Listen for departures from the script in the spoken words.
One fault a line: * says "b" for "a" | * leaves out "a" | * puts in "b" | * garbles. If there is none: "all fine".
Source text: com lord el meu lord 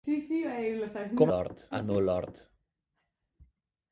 all fine